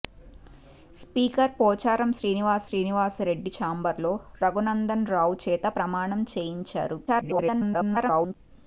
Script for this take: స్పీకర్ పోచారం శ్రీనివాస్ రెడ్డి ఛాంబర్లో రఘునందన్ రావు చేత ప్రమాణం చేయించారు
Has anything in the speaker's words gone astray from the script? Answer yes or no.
yes